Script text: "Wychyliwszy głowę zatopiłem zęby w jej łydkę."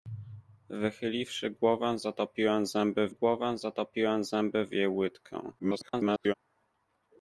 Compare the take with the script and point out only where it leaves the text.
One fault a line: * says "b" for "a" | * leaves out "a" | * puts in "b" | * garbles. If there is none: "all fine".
* puts in "głowę zatopiłem zęby"
* garbles